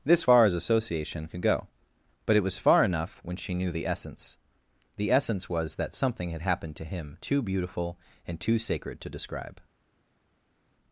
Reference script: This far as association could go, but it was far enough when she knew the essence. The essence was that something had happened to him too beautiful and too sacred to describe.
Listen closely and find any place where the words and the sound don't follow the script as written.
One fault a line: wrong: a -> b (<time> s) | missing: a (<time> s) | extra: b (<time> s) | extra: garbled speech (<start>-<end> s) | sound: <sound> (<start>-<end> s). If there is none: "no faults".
no faults